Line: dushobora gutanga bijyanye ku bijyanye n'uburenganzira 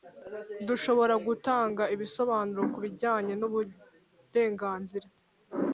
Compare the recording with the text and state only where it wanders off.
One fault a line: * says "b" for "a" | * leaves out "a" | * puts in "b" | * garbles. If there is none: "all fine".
* says "ibisobanuro" for "bijyanye"